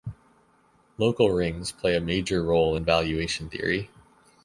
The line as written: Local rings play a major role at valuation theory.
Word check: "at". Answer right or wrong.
wrong